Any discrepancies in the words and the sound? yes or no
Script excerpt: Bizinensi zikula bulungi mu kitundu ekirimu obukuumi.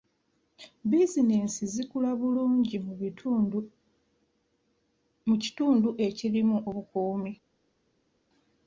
no